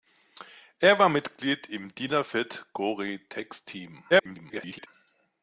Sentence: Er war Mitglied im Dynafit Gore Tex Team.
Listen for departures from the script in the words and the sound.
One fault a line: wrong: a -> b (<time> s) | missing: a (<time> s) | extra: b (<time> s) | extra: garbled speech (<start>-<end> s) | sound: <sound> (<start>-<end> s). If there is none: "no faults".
extra: garbled speech (4.1-4.9 s)